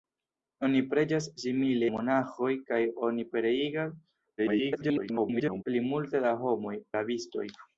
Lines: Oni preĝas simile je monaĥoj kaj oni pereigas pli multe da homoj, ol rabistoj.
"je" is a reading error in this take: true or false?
true